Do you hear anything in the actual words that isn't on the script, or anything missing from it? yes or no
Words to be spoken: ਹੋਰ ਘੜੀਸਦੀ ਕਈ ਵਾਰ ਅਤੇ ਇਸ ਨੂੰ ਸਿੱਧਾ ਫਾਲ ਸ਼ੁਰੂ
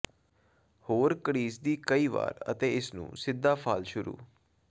no